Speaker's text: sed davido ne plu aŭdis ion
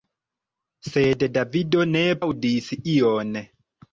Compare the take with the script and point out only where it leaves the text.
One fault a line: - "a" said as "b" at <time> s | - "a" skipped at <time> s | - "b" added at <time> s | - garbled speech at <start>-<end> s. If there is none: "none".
- "plu" skipped at 2.0 s